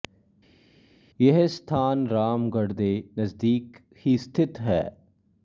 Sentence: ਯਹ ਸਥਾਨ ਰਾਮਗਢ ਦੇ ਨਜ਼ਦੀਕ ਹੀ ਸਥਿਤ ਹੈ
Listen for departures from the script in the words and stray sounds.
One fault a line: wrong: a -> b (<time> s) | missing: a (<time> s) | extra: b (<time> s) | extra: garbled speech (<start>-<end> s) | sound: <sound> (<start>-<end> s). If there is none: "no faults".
no faults